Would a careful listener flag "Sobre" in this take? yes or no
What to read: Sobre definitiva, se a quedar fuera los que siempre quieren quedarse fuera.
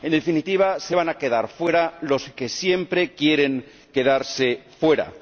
yes